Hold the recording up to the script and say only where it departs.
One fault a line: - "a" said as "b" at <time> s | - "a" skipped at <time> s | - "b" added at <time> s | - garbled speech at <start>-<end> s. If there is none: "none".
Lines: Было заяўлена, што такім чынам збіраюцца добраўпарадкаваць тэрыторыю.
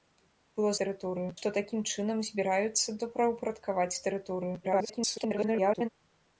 - "заяўлена" said as "тэрыторыю" at 0.8 s
- garbled speech at 4.6-5.9 s